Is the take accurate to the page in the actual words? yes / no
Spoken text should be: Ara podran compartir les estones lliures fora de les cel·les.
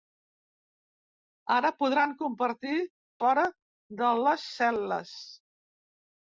no